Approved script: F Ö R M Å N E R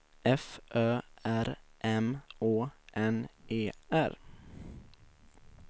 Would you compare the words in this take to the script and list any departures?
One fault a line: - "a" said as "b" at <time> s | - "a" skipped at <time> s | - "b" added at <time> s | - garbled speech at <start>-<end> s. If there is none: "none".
none